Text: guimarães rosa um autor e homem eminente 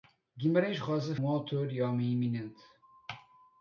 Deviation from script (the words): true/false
false